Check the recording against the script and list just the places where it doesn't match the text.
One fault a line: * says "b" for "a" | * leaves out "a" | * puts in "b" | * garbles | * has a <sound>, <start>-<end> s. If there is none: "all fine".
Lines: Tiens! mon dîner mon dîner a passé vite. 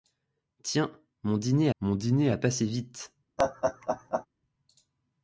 * has a laugh, 3.4-4.3 s